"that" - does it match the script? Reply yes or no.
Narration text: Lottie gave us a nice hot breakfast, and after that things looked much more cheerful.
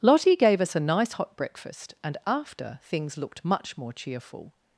no